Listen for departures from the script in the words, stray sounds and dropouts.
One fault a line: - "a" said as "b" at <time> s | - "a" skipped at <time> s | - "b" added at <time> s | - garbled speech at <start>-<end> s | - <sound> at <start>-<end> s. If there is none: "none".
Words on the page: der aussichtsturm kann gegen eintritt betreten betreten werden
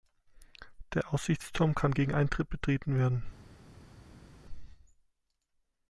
- "betreten" skipped at 3.0 s